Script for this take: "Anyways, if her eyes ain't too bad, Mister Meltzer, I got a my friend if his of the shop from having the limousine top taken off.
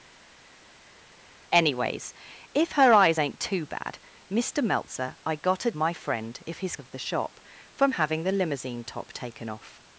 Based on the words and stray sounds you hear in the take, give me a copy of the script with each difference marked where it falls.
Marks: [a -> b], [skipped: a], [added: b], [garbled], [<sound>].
"Anyways, if her eyes ain't too bad, Mister Meltzer, I got a my friend if his of the shop from having the limousine top taken off.